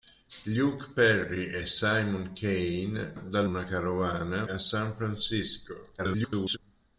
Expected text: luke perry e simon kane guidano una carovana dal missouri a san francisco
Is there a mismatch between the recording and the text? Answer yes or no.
yes